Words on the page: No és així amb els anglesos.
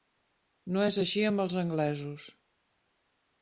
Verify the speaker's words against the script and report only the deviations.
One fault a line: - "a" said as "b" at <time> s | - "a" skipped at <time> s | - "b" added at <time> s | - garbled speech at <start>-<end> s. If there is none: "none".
none